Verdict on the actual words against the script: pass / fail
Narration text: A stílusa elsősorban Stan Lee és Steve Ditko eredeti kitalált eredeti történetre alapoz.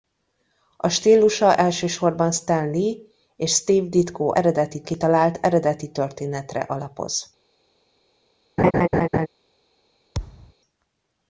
pass